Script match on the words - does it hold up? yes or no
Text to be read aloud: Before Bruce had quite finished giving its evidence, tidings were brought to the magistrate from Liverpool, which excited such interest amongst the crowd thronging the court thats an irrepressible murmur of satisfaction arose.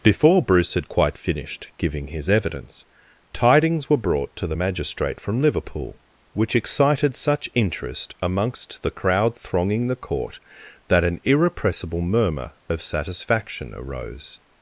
no